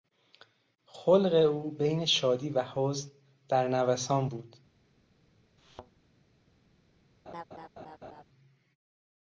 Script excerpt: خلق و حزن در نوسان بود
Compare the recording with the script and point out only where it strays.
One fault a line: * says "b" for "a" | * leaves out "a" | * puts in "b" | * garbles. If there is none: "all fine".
* puts in "او بین شادی"